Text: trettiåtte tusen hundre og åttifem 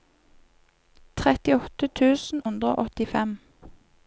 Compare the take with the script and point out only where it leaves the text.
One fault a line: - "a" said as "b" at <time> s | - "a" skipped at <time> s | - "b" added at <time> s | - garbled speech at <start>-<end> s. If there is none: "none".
none